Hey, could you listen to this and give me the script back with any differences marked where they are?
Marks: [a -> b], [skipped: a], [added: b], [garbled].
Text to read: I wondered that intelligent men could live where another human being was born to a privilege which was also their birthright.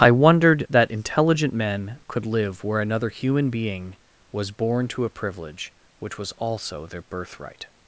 I wondered that intelligent men could live where another human being was born to a privilege which was also their birthright.